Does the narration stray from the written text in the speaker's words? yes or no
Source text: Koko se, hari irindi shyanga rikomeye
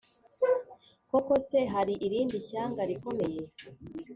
no